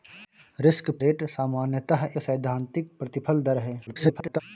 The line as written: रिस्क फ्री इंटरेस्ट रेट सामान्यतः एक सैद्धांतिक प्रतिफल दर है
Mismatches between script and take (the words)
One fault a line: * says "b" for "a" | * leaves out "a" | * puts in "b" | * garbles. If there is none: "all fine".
* leaves out "फ्री इंटरेस्ट"
* leaves out "एक"
* garbles